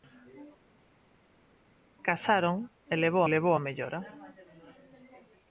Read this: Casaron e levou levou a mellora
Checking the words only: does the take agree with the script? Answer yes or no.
yes